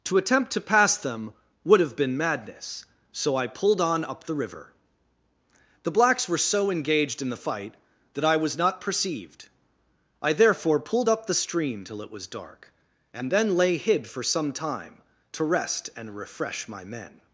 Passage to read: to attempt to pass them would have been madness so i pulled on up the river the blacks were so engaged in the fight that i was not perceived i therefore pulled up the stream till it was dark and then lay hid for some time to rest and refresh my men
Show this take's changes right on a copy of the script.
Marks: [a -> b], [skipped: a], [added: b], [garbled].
to attempt to pass them would have been madness so i pulled on up the river the blacks were so engaged in the fight that i was not perceived i therefore pulled up the stream till it was dark and then lay hid for some time to rest and refresh my men